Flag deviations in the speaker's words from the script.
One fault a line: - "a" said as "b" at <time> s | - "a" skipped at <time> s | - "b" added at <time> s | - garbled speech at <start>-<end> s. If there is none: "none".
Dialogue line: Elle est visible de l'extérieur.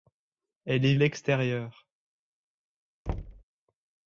- "visible de" skipped at 0.9 s